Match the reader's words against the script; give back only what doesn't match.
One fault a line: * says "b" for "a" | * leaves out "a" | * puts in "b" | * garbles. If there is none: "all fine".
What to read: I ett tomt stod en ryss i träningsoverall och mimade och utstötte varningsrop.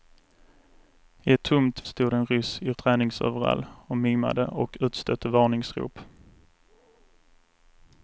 all fine